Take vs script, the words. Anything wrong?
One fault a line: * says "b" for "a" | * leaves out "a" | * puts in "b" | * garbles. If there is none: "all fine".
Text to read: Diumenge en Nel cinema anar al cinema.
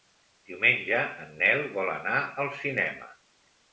* says "vol" for "cinema"